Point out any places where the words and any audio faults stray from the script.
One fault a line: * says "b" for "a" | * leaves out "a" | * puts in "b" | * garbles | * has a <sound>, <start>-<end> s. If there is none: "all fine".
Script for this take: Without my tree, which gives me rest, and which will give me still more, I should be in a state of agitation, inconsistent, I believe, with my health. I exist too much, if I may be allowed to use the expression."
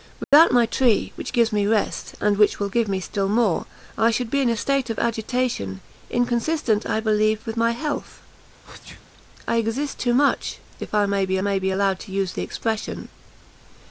* has a dropout, 0.2-0.3 s
* has a sneeze, 8.6-9.1 s
* puts in "may be"